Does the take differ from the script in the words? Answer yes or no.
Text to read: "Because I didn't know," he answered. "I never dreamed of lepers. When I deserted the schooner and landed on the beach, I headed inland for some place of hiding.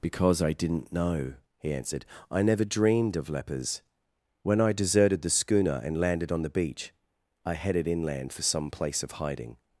no